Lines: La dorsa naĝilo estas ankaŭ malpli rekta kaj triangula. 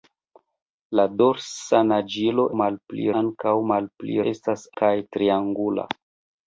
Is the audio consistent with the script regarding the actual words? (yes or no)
no